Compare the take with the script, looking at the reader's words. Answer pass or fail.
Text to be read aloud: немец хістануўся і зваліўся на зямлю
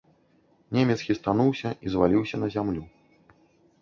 pass